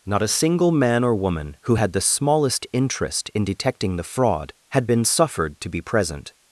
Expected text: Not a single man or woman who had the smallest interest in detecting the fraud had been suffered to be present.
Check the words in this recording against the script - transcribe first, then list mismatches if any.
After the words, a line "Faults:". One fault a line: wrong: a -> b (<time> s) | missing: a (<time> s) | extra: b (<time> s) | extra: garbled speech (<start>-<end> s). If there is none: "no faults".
Not a single man or woman who had the smallest interest in detecting the fraud had been suffered to be present.
Faults:
no faults